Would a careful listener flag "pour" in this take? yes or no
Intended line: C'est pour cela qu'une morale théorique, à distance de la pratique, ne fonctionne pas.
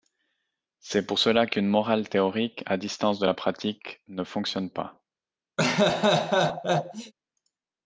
no